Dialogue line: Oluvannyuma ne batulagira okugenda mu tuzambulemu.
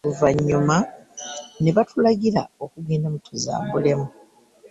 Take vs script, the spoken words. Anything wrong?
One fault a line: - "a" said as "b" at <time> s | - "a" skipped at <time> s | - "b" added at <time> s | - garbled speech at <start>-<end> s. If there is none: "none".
none